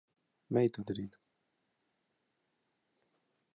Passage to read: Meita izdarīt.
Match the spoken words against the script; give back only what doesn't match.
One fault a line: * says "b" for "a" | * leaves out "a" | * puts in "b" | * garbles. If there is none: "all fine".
all fine